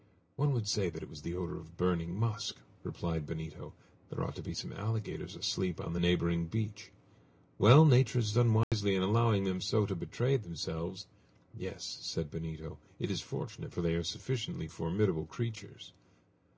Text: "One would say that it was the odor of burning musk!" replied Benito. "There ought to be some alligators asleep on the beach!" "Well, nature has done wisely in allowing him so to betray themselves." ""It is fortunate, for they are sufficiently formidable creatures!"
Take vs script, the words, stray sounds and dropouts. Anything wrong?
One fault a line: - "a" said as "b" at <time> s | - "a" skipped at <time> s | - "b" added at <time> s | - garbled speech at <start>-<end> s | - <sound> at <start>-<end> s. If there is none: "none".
- "neighboring" added at 6.0 s
- dropout at 8.6-8.7 s
- "him" said as "them" at 9.5 s
- "Yes said Benito" added at 11.6 s